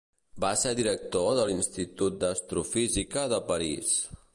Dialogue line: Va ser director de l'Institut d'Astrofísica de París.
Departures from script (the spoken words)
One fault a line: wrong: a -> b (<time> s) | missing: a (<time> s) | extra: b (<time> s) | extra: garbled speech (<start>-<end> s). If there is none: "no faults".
no faults